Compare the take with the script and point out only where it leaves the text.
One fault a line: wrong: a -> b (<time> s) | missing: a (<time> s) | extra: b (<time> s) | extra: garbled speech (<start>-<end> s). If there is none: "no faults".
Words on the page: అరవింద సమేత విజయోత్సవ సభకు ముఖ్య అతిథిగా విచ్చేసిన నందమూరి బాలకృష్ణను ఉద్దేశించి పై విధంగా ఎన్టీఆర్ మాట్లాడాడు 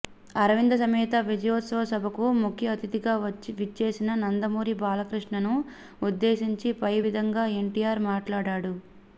no faults